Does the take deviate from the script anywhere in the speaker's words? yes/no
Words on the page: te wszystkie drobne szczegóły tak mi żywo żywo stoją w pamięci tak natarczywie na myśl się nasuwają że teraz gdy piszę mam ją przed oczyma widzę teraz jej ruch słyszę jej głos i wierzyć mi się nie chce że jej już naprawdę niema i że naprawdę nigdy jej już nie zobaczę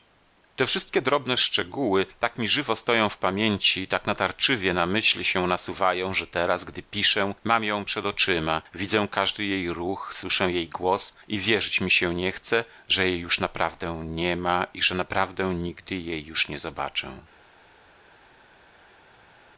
yes